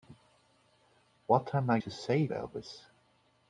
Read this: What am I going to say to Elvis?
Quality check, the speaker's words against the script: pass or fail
fail